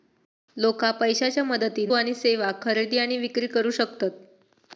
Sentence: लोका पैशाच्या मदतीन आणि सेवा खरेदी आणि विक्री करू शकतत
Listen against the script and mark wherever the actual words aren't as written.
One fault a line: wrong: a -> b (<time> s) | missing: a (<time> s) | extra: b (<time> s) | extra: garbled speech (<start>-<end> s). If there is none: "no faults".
no faults